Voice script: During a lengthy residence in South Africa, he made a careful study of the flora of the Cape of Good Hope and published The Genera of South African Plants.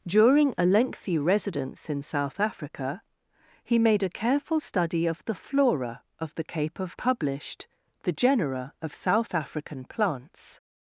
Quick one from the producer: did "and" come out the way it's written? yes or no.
no